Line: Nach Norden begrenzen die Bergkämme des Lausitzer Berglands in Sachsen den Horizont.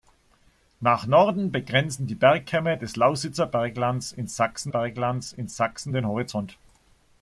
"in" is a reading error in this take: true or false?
false